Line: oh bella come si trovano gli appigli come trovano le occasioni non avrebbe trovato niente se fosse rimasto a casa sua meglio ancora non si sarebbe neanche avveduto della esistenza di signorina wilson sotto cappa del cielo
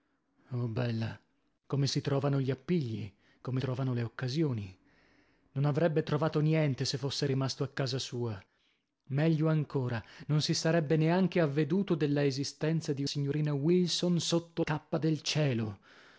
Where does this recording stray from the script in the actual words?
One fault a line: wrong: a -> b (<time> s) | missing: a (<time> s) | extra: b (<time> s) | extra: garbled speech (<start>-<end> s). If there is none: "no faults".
no faults